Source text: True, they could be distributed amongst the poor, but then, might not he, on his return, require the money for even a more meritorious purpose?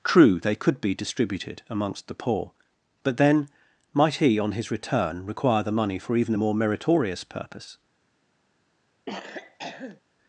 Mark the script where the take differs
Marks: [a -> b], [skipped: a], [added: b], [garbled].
True, they could be distributed amongst the poor, but then, might [skipped: not] he, on his return, require the money for even a more meritorious purpose?